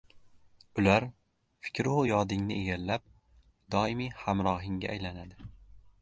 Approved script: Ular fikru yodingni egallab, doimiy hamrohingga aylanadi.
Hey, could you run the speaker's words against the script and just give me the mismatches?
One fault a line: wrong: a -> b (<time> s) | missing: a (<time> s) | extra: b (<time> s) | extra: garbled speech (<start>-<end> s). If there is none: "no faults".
no faults